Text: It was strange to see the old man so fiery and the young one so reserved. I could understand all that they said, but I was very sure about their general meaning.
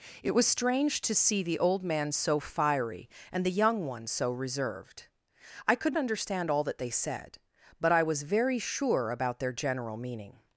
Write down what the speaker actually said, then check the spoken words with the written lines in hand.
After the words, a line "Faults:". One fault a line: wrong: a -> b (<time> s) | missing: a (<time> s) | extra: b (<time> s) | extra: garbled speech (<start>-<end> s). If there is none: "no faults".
It was strange to see the old man so fiery and the young one so reserved. I could understand all that they said, but I was very sure about their general meaning.
Faults:
no faults